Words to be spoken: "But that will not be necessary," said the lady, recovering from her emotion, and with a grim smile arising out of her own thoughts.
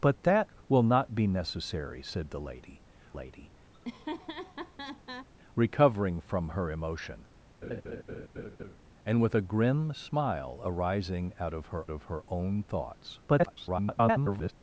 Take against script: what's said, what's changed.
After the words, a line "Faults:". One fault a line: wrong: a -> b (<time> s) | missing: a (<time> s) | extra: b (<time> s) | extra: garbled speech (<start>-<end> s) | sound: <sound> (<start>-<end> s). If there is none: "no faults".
"But that will not be necessary," said the lady lady, recovering from her emotion, and with a grim smile arising out of her of her own thoughts. [garbled]
Faults:
extra: lady (3.1 s)
sound: laugh (3.7-5.3 s)
sound: laugh (7.6-8.8 s)
extra: of her (11.9 s)
extra: garbled speech (13.3-14.5 s)